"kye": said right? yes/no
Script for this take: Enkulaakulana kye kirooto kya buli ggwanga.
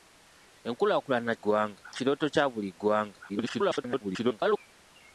no